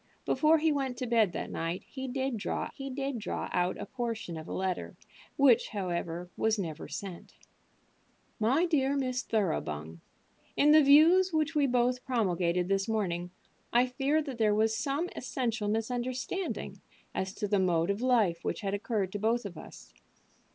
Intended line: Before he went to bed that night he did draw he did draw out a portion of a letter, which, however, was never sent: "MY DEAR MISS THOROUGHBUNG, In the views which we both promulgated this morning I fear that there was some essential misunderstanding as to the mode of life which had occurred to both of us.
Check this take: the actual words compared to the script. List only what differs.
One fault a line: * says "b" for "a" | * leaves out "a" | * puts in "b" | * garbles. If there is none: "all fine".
all fine